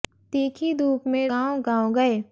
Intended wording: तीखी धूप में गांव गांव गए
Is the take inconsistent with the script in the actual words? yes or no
no